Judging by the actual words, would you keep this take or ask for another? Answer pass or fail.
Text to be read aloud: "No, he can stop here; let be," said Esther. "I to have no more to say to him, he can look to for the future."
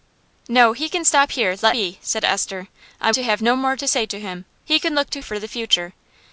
pass